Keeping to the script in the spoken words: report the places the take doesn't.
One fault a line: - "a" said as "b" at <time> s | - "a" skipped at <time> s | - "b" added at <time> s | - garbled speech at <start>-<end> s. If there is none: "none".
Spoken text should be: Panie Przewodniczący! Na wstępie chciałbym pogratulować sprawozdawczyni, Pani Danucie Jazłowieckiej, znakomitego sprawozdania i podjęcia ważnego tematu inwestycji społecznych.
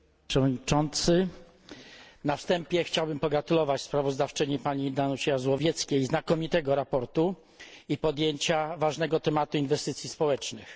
none